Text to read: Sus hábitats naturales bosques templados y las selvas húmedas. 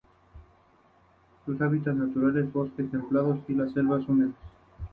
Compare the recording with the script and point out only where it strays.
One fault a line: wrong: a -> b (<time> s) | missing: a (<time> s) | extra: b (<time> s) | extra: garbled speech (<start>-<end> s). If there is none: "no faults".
no faults